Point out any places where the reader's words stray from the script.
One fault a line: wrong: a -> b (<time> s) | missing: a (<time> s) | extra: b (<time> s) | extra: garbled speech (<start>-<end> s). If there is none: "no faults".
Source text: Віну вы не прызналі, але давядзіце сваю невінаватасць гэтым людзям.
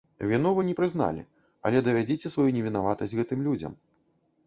no faults